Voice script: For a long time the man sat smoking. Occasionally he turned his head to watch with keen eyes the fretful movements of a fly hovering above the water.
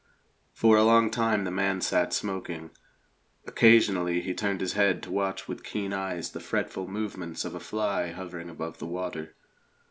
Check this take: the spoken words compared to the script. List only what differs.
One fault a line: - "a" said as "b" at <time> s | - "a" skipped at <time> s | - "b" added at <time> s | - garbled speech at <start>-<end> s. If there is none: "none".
none